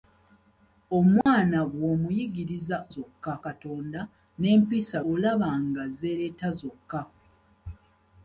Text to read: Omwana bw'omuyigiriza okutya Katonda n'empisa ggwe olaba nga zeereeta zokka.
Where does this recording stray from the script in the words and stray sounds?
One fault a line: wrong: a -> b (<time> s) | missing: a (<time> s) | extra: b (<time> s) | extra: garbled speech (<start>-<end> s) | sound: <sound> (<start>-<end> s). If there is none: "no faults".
sound: dropout (1.2-1.3 s)
wrong: okutya -> zokka (2.9 s)
missing: ggwe (5.0 s)